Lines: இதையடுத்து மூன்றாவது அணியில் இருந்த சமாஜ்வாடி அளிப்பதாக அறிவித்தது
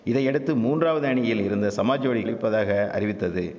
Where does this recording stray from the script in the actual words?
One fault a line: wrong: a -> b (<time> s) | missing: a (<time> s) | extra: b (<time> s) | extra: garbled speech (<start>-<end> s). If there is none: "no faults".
no faults